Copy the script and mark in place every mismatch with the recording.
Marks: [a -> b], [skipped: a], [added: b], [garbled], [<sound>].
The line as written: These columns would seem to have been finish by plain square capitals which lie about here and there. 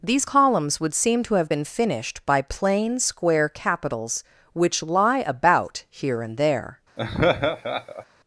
These columns would seem to have been [finish -> finished] by plain square capitals which lie about here and there. [laugh]